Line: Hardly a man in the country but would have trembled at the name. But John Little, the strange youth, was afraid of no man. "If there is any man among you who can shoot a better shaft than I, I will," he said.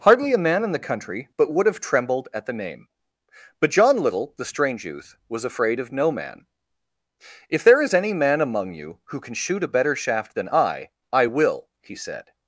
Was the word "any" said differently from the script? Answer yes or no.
no